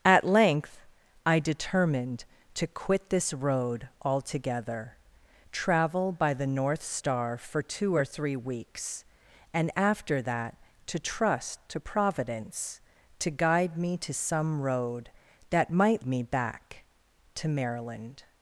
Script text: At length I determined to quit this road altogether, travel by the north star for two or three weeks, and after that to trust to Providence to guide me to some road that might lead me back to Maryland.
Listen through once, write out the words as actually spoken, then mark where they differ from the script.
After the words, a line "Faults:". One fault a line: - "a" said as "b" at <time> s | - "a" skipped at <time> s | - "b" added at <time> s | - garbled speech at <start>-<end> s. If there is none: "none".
At length I determined to quit this road altogether, travel by the north star for two or three weeks, and after that to trust to Providence to guide me to some road that might me back to Maryland.
Faults:
- "lead" skipped at 16.0 s